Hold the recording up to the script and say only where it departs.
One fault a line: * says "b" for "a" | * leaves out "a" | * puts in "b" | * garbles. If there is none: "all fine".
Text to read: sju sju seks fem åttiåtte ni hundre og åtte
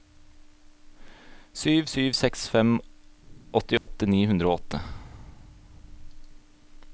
all fine